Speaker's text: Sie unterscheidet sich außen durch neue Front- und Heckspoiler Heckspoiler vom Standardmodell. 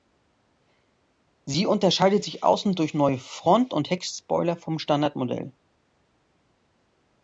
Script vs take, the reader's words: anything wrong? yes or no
yes